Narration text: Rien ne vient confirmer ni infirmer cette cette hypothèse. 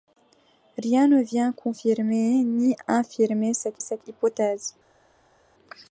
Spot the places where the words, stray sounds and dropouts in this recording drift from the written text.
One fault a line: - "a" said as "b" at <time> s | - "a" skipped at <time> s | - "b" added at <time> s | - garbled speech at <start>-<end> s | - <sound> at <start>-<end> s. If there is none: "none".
none